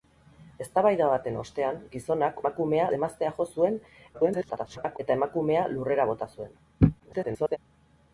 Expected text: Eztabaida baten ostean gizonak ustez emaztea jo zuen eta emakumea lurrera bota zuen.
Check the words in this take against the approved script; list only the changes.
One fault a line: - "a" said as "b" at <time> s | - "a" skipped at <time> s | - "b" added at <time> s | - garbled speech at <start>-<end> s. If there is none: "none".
- "ustez" said as "emakumea" at 2.4 s
- garbled speech at 4.1-5.0 s
- garbled speech at 7.0-7.6 s